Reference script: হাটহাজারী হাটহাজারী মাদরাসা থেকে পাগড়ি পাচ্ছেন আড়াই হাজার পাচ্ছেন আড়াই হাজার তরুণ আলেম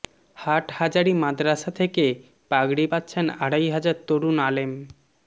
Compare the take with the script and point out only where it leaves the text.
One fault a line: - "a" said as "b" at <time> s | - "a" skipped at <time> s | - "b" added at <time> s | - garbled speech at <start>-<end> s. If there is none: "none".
- "হাটহাজারী" skipped at 1.1 s
- "পাচ্ছেন আড়াই হাজার" skipped at 3.9 s